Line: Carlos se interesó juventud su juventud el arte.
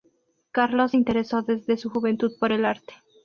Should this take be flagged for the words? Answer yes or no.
yes